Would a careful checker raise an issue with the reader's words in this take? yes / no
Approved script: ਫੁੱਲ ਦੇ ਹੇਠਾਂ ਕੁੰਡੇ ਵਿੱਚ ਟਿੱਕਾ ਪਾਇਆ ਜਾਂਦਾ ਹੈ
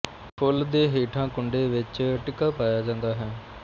no